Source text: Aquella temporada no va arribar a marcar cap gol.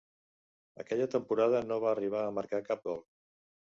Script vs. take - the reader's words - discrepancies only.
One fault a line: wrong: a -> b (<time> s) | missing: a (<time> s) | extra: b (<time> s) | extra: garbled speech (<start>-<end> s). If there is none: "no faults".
no faults